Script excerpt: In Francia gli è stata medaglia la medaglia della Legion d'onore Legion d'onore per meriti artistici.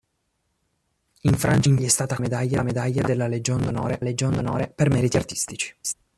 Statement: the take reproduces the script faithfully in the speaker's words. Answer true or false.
true